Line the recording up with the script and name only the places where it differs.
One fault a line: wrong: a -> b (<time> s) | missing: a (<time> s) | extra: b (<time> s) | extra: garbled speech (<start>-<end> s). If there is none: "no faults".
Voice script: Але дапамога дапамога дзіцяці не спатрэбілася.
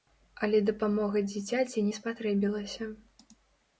missing: дапамога (1.2 s)